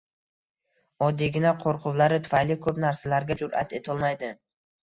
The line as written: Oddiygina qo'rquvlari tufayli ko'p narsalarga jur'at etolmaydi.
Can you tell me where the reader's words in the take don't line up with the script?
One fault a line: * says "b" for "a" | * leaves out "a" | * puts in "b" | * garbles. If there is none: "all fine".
all fine